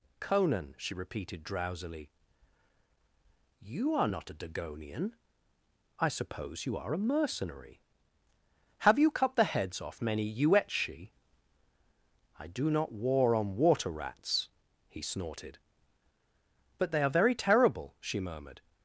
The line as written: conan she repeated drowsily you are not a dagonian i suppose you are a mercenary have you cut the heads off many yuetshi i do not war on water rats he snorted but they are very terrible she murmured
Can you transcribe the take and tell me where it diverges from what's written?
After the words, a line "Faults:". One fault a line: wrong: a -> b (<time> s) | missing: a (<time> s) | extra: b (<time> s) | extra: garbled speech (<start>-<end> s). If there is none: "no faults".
conan she repeated drowsily you are not a dagonian i suppose you are a mercenary have you cut the heads off many yuetshi i do not war on water rats he snorted but they are very terrible she murmured
Faults:
no faults